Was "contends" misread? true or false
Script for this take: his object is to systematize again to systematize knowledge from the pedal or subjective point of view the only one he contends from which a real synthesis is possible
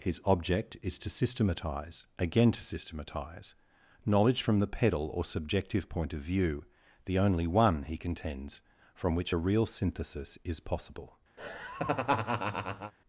false